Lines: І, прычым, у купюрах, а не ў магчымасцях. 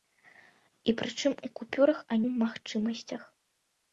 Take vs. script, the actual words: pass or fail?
fail